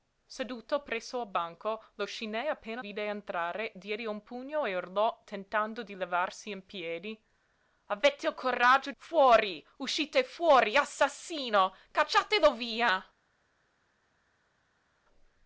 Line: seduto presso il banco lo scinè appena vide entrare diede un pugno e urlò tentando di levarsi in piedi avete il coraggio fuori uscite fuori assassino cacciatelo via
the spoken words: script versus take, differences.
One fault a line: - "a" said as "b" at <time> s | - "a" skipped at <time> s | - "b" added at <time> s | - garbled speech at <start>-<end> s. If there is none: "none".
none